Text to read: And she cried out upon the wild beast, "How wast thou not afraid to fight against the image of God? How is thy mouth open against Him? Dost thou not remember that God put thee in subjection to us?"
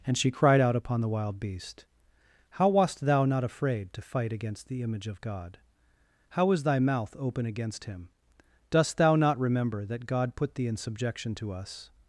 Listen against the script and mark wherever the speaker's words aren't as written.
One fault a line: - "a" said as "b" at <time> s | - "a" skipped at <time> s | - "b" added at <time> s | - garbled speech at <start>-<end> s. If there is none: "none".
none